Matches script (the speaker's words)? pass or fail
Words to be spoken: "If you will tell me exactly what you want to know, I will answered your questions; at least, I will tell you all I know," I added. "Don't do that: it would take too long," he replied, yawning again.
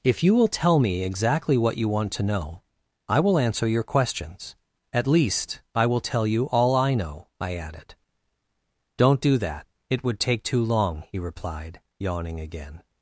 fail